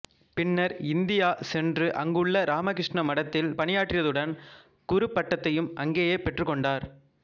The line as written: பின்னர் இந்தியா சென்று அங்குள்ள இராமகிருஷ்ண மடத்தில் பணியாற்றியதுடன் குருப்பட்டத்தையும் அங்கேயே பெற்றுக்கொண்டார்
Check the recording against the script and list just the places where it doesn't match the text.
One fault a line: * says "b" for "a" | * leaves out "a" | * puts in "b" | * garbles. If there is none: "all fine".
all fine